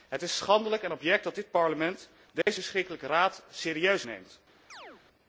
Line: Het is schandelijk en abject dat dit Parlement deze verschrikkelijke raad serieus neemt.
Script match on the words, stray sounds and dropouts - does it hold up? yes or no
no